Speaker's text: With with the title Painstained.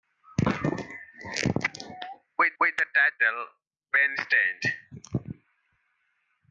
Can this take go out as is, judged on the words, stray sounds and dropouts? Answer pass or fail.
pass